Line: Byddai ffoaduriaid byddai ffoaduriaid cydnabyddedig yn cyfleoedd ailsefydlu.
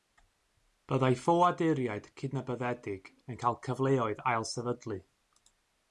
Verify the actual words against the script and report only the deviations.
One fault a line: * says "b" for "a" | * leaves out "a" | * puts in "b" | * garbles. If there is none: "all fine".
* leaves out "byddai ffoaduriaid"
* puts in "cael"